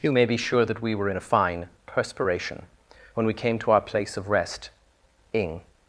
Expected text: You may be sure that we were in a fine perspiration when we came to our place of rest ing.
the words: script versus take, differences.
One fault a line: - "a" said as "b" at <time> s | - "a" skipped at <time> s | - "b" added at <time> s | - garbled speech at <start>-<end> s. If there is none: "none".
none